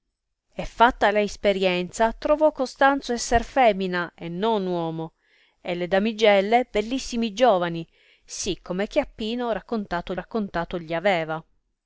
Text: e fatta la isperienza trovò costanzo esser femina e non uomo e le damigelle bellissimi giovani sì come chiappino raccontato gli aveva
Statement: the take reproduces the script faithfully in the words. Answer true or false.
false